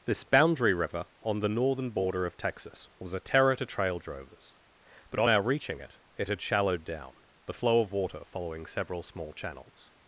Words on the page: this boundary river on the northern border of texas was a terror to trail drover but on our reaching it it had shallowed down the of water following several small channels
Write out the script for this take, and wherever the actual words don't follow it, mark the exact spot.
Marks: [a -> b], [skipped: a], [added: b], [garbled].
this boundary river on the northern border of texas was a terror to trail [drover -> drovers] but on our reaching it it had shallowed down the [added: flow] of water following several small channels